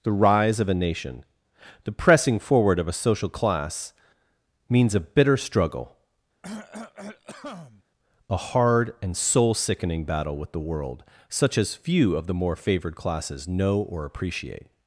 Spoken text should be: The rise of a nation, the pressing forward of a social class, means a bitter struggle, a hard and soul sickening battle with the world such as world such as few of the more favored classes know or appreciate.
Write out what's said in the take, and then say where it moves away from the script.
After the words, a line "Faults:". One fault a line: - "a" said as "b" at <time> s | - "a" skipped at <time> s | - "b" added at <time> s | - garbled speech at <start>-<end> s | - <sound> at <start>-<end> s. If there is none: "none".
The rise of a nation, the pressing forward of a social class, means a bitter struggle, a hard and soul sickening battle with the world such as few of the more favored classes know or appreciate.
Faults:
- cough at 6.4-7.8 s
- "world such as" skipped at 11.7 s